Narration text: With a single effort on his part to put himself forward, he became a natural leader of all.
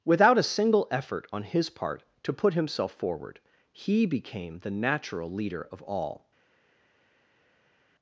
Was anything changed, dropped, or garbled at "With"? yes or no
yes